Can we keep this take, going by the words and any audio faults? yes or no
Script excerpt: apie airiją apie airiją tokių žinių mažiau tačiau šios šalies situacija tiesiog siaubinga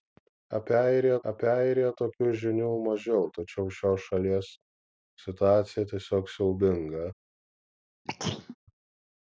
no